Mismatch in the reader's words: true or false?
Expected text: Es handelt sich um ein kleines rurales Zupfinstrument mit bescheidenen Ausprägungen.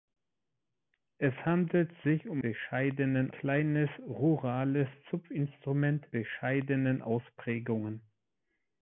true